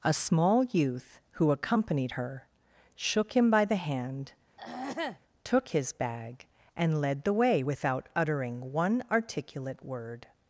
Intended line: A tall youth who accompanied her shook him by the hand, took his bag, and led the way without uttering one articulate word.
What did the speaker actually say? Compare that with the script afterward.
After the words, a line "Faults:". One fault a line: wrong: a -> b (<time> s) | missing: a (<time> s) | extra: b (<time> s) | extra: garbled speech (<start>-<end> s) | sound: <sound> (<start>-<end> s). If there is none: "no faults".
A small youth who accompanied her shook him by the hand, took his bag, and led the way without uttering one articulate word.
Faults:
wrong: tall -> small (0.1 s)
sound: throat clearing (4.6-5.2 s)